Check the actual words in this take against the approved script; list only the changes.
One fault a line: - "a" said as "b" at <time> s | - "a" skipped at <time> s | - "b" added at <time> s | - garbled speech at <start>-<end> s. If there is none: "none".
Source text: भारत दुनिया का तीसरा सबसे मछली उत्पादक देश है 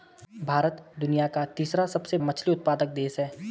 none